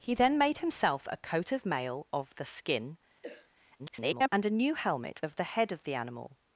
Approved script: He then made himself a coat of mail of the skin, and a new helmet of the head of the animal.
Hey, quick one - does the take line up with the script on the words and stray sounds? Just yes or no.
no